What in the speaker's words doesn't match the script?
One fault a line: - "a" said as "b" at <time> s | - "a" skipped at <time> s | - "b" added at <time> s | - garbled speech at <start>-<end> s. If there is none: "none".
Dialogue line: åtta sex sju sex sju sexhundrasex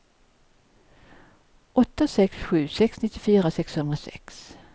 - "sju" said as "nittiofyra" at 3.0 s